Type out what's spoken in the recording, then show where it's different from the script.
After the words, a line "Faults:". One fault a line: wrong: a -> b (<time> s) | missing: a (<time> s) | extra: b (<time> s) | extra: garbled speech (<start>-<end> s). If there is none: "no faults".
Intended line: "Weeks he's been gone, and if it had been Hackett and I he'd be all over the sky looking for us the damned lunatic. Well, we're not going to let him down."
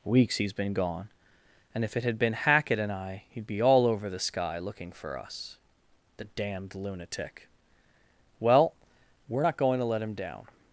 "Weeks he's been gone, and if it had been Hackett and I he'd be all over the sky looking for us the damned lunatic. Well, we're not going to let him down."
Faults:
no faults